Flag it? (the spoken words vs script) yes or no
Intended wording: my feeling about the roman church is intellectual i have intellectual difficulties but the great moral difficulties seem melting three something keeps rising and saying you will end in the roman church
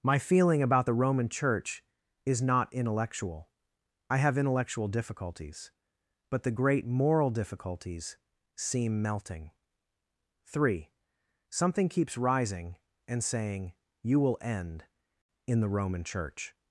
yes